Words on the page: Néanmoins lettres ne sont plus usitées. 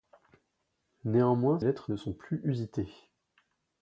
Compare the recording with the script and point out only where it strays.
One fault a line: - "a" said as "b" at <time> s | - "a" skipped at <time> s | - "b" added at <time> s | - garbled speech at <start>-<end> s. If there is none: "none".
none